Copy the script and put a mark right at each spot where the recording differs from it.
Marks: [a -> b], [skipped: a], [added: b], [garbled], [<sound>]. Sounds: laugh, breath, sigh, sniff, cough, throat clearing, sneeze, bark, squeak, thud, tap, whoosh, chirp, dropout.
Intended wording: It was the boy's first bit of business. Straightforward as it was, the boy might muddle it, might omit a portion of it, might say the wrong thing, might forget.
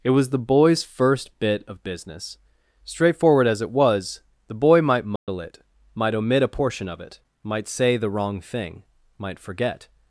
It was the boy's first bit of business. Straightforward as it was, the boy might muddle [dropout] it, might omit a portion of it, might say the wrong thing, might forget.